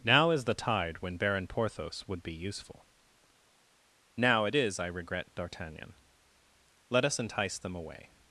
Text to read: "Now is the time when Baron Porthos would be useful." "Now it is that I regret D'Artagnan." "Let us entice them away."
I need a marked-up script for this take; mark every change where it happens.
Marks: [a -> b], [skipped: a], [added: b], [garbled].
"Now is the [time -> tide] when Baron Porthos would be useful." "Now it is [skipped: that] I regret D'Artagnan." "Let us entice them away."